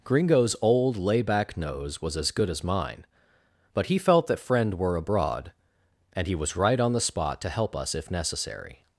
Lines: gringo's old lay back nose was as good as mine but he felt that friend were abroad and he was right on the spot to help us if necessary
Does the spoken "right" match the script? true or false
true